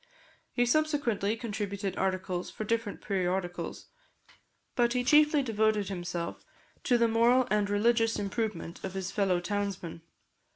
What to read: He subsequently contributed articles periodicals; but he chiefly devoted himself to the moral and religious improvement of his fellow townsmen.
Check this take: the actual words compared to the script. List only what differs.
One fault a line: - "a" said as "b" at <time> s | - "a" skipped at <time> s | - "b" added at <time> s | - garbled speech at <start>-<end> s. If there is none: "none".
- "for different" added at 2.5 s